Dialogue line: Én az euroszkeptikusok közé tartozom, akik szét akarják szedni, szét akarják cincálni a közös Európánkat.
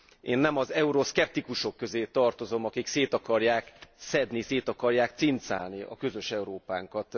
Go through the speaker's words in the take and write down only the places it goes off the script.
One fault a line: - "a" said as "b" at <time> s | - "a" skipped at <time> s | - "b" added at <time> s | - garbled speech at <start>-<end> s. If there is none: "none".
- "nem" added at 0.4 s